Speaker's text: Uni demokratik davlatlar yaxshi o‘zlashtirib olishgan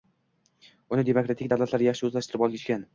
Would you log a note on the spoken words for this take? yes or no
no